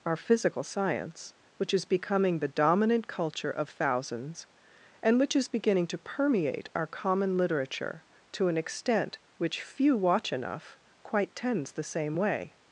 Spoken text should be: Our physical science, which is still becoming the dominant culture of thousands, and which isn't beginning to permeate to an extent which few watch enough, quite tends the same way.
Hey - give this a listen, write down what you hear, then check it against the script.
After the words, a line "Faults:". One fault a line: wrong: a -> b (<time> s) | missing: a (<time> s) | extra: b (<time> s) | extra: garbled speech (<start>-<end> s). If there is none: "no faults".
Our physical science, which is becoming the dominant culture of thousands, and which is beginning to permeate our common literature to an extent which few watch enough, quite tends the same way.
Faults:
missing: still (1.9 s)
wrong: isn't -> is (5.4 s)
extra: our common literature (6.7 s)